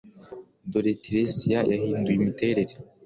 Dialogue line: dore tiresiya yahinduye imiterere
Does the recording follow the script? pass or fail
pass